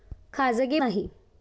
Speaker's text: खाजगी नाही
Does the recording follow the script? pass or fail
pass